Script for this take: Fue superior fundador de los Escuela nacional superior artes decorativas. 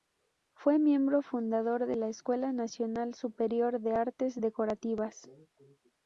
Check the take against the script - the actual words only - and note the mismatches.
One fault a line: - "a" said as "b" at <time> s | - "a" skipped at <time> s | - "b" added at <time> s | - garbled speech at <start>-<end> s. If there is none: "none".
- "superior" said as "miembro" at 0.8 s
- "los" said as "la" at 1.9 s
- "de" added at 3.8 s